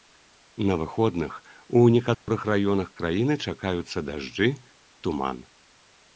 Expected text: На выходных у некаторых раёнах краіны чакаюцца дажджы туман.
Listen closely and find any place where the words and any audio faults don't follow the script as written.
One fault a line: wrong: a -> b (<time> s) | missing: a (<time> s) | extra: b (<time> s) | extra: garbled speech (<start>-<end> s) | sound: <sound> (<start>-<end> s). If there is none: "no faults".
sound: dropout (2.1-2.3 s)